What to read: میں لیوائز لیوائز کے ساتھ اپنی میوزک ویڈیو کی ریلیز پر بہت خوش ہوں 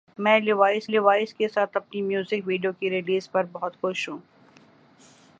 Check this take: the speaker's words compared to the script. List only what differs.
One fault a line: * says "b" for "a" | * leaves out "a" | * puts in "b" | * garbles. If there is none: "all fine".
all fine